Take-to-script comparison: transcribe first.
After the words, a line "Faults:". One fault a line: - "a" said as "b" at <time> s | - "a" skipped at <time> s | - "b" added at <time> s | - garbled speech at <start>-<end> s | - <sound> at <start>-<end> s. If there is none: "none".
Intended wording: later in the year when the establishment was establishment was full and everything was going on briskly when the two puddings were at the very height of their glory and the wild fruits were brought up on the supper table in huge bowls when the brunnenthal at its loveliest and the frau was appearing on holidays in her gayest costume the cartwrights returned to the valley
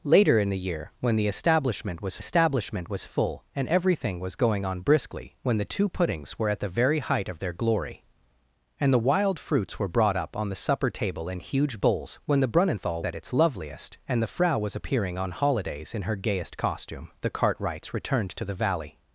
later in the year when the establishment was establishment was full and everything was going on briskly when the two puddings were at the very height of their glory and the wild fruits were brought up on the supper table in huge bowls when the brunnenthal at its loveliest and the frau was appearing on holidays in her gayest costume the cartwrights returned to the valley
Faults:
none